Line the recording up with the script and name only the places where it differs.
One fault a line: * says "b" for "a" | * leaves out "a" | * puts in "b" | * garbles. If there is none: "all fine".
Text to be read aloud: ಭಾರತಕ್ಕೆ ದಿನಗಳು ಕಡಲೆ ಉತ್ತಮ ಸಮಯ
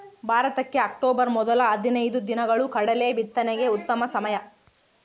* puts in "ಅಕ್ಟೋಬರ್ ಮೊದಲ ಹದಿನೈದು"
* puts in "ಬಿತ್ತನೆಗೆ"